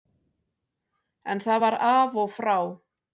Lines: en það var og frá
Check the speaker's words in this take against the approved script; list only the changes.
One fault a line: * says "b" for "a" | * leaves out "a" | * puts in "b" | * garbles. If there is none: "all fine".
* puts in "af"